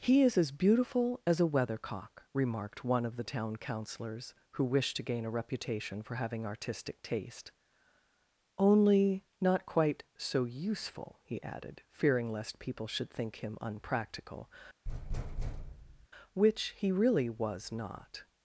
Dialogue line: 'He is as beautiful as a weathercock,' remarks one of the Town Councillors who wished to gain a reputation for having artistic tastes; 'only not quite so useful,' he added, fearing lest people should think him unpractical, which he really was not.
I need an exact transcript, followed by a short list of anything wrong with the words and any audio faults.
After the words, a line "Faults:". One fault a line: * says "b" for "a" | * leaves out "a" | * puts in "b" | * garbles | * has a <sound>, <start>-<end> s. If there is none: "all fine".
'He is as beautiful as a weathercock,' remarked one of the Town Councillors who wished to gain a reputation for having artistic taste; 'only not quite so useful,' he added, fearing lest people should think him unpractical, which he really was not.
Faults:
* says "remarked" for "remarks"
* says "taste" for "tastes"
* has a thud, 14.9-16.1 s